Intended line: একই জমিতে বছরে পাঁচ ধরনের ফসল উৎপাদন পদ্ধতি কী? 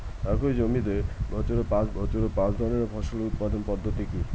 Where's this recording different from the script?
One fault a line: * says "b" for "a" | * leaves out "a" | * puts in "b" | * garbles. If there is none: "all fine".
* puts in "বছরে পাঁচ"